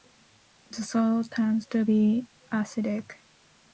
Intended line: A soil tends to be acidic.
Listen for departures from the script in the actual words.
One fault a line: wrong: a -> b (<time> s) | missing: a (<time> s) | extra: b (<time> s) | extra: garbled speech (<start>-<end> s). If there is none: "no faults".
wrong: A -> The (0.7 s)